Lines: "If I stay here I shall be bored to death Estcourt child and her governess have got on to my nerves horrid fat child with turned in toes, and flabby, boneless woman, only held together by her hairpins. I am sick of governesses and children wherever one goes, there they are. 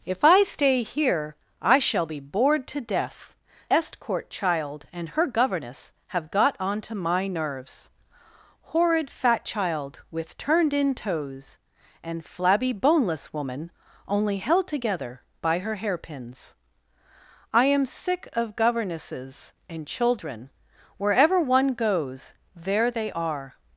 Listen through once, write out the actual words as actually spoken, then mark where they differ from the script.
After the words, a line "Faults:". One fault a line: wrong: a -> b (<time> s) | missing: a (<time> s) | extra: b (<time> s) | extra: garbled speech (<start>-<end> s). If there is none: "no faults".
"If I stay here I shall be bored to death Estcourt child and her governess have got on to my nerves horrid fat child with turned in toes, and flabby, boneless woman, only held together by her hairpins. I am sick of governesses and children wherever one goes, there they are.
Faults:
no faults